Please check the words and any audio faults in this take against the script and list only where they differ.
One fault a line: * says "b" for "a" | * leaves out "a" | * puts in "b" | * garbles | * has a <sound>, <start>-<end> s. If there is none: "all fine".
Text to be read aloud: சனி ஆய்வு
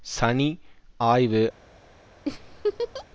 * has a laugh, 2.3-3.1 s